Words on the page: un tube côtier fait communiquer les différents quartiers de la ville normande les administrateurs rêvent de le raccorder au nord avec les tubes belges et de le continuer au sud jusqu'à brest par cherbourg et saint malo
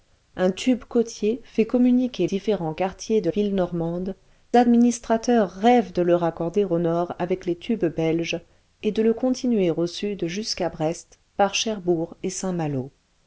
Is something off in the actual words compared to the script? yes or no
yes